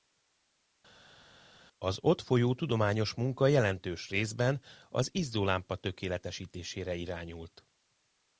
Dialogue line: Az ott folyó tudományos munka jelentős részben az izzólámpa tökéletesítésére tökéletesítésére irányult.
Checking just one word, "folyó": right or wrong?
right